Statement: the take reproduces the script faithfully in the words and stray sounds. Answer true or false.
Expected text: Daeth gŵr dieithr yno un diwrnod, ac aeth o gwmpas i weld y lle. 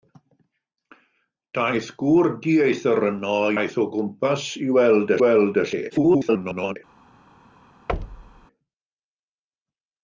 false